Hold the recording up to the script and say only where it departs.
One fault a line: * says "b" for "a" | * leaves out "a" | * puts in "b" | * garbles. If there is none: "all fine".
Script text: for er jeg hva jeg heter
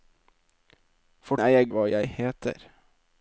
all fine